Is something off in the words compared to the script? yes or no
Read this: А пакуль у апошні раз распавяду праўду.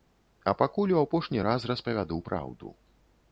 no